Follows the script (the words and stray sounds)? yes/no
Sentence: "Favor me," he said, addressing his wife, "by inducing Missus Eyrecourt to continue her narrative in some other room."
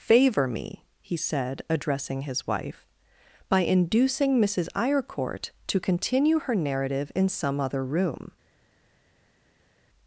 yes